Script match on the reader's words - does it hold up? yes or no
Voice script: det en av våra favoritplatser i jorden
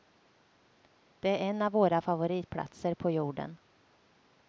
no